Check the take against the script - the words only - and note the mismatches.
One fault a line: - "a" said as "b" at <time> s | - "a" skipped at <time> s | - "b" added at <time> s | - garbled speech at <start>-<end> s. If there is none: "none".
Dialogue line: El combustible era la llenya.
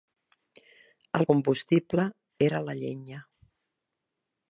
none